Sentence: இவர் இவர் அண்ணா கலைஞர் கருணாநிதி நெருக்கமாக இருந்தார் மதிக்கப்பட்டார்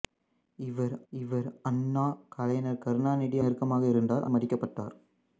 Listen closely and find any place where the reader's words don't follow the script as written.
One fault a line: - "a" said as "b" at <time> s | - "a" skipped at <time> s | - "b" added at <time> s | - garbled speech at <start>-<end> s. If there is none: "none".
none